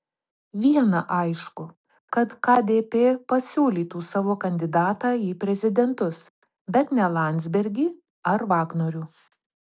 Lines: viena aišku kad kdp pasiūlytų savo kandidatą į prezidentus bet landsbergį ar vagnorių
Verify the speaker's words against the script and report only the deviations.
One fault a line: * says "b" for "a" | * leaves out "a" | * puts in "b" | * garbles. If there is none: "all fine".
* puts in "ne"